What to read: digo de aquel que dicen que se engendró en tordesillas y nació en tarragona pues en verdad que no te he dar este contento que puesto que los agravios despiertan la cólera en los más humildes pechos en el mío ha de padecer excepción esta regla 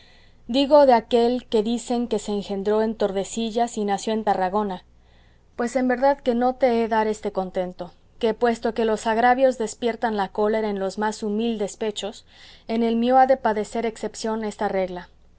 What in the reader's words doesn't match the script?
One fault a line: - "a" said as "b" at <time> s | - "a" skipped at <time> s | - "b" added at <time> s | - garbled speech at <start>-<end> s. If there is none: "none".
none